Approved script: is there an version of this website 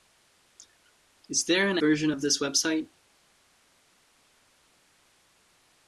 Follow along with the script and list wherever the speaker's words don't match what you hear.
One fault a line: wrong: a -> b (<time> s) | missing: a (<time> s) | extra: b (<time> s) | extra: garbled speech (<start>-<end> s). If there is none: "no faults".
no faults